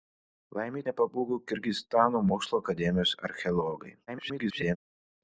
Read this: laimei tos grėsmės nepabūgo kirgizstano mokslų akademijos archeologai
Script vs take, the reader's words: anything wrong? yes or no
yes